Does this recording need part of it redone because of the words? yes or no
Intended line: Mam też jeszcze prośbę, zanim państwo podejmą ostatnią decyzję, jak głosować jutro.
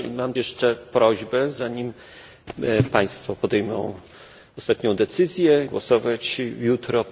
yes